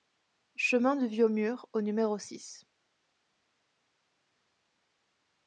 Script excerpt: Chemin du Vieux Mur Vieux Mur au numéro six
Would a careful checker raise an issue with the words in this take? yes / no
yes